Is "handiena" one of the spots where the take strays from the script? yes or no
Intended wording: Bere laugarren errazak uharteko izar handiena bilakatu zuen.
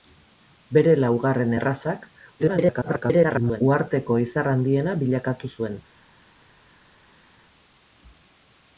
no